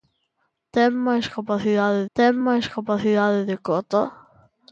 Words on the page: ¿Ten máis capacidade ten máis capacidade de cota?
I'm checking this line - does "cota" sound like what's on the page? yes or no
yes